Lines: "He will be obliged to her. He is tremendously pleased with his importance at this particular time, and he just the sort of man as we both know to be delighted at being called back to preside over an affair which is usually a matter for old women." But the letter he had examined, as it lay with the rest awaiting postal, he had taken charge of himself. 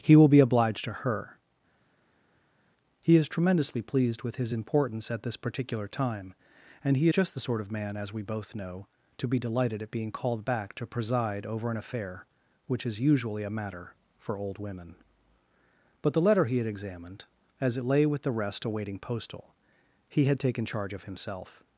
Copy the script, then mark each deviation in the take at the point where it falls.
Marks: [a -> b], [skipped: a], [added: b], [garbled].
"He will be obliged to her. He is tremendously pleased with his importance at this particular time, and he just the sort of man as we both know to be delighted at being called back to preside over an affair which is usually a matter for old women." But the letter he had examined, as it lay with the rest awaiting postal, he had taken charge of himself.